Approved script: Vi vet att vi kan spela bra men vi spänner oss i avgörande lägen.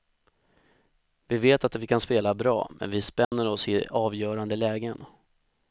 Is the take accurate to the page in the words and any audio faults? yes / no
no